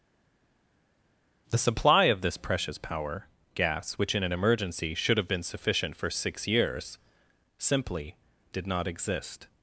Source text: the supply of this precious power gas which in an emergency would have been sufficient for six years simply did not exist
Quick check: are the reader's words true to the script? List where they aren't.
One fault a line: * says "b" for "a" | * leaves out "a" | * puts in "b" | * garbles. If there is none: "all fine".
* says "should" for "would"